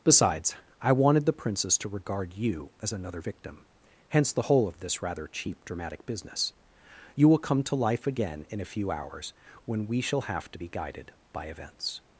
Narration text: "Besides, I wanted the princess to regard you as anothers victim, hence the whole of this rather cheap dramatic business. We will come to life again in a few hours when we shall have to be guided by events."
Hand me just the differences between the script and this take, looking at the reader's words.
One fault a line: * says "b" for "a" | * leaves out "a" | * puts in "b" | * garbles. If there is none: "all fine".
* says "another" for "anothers"
* says "You" for "We"